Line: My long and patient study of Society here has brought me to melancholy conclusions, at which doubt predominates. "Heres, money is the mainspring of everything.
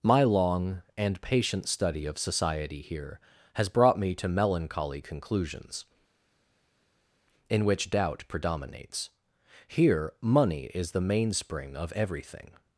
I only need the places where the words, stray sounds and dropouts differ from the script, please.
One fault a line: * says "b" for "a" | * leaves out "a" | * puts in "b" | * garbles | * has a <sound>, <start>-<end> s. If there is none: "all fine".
* says "in" for "at"
* says "Here" for "Heres"